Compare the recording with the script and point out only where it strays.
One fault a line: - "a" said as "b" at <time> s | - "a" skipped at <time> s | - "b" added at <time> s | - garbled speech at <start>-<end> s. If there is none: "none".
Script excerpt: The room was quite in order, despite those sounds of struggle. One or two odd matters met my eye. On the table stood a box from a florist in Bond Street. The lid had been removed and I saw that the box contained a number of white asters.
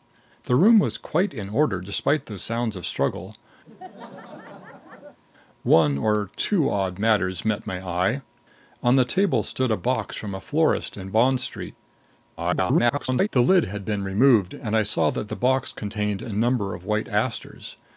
- garbled speech at 12.4-13.3 s